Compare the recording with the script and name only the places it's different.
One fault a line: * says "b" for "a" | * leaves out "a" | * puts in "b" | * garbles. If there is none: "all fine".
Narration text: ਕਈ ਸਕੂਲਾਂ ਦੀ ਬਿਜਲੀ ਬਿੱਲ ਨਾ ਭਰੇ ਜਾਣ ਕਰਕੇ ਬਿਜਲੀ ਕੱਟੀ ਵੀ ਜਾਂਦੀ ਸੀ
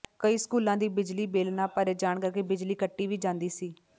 all fine